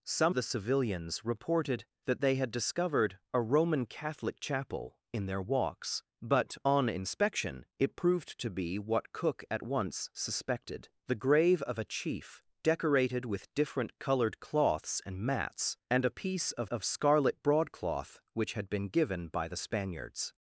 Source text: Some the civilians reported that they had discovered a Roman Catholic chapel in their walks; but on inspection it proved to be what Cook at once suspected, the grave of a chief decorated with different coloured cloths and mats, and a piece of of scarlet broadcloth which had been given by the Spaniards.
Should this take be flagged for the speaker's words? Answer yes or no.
no